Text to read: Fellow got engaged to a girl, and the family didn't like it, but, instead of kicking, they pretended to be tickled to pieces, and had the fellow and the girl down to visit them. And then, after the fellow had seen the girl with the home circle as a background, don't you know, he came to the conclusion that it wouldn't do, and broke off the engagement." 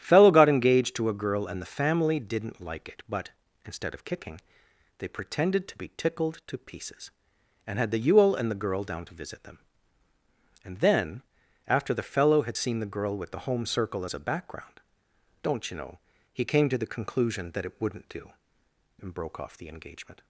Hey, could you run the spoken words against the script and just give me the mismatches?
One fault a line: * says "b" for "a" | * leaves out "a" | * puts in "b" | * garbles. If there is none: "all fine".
* says "yule" for "fellow"